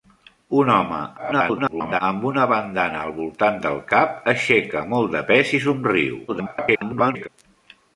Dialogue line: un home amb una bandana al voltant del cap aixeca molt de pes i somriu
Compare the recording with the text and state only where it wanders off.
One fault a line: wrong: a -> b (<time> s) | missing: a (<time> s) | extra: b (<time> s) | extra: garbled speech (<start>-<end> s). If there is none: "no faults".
extra: garbled speech (1.2-2.0 s)
extra: garbled speech (6.3-7.3 s)